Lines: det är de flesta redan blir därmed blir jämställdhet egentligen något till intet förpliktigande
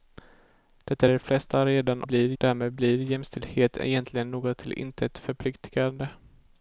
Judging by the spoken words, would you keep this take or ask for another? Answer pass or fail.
pass